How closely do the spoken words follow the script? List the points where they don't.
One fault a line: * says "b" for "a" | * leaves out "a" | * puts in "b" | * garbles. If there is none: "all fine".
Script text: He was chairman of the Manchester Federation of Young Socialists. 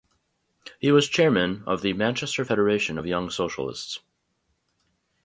all fine